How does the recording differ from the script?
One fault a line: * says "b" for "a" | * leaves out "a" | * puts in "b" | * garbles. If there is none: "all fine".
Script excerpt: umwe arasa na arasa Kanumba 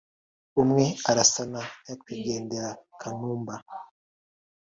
* says "nyakwigendera" for "arasa"